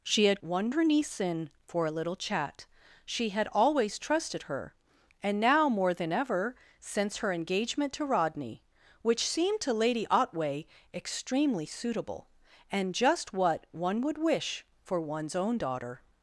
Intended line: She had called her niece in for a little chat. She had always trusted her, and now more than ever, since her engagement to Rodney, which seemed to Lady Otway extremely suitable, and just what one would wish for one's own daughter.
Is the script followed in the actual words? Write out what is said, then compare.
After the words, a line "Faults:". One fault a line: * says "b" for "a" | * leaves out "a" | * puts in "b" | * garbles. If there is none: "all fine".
She had one her niece in for a little chat. She had always trusted her, and now more than ever, since her engagement to Rodney, which seemed to Lady Otway extremely suitable, and just what one would wish for one's own daughter.
Faults:
* says "one" for "called"